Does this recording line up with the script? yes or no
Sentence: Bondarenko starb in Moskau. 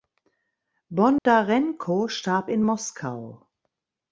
yes